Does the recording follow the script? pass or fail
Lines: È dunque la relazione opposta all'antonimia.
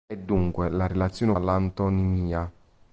fail